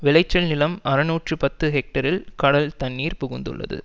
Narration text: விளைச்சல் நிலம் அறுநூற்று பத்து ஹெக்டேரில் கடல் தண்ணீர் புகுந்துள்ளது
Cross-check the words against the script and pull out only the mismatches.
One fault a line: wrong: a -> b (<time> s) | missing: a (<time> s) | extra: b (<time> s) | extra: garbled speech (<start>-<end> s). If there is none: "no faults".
no faults